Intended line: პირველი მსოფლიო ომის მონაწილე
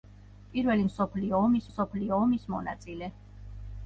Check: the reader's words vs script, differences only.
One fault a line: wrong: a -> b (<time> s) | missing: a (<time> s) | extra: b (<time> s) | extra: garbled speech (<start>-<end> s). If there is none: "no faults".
extra: მსოფლიო ომის (1.7 s)